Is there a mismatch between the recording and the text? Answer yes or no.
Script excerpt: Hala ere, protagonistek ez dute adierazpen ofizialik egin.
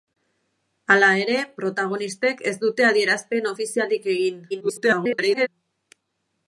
yes